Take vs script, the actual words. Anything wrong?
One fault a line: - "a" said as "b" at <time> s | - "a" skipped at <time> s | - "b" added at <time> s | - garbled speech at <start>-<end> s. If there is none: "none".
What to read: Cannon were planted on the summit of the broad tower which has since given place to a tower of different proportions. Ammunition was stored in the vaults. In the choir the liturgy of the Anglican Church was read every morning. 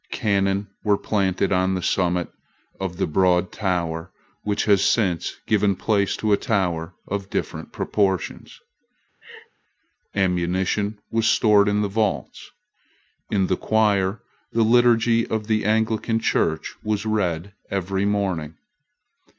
none